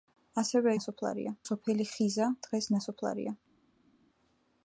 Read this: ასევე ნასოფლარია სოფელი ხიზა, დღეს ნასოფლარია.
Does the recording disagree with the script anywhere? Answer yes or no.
no